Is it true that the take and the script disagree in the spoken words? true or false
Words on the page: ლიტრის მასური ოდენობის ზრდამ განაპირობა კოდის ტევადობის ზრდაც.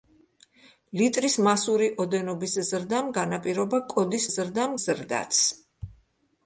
true